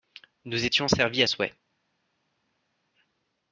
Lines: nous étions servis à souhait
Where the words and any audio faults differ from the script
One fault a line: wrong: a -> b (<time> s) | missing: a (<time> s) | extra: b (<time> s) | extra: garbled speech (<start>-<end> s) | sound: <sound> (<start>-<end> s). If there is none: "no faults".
no faults